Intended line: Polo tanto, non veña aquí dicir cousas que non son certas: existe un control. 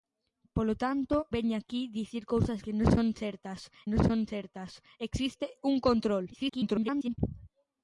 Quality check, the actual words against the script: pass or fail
fail